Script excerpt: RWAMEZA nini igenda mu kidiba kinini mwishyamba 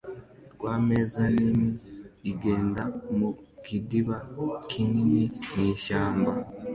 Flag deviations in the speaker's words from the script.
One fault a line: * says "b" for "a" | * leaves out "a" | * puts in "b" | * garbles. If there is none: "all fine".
all fine